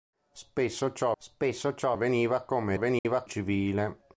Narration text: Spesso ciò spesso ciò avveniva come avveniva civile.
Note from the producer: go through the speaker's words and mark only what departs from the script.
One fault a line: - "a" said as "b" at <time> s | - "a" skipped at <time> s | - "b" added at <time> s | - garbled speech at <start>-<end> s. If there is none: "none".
none